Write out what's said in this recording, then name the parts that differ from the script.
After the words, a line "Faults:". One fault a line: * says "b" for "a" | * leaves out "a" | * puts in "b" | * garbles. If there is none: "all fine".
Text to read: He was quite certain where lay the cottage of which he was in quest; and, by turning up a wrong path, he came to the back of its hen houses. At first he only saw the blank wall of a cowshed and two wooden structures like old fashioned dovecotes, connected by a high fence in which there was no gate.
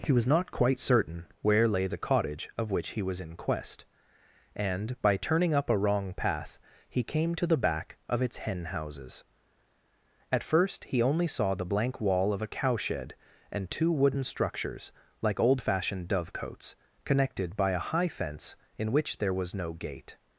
He was not quite certain where lay the cottage of which he was in quest; and, by turning up a wrong path, he came to the back of its hen houses. At first he only saw the blank wall of a cowshed and two wooden structures like old fashioned dovecotes, connected by a high fence in which there was no gate.
Faults:
* puts in "not"